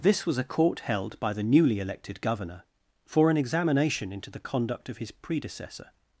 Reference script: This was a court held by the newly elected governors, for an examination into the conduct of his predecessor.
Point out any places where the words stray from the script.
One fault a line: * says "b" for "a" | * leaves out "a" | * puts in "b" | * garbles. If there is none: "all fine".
* says "governor" for "governors"